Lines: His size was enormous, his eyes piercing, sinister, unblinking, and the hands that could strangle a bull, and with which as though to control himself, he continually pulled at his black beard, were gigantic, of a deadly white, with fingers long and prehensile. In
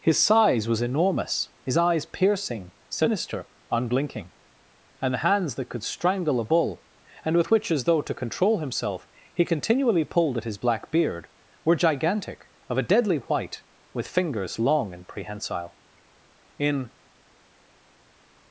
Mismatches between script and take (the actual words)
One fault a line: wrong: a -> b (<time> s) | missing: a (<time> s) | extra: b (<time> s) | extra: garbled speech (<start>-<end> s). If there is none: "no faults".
no faults